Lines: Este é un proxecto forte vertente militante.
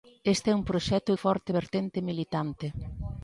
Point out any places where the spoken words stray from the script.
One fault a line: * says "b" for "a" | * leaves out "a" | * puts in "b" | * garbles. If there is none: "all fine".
all fine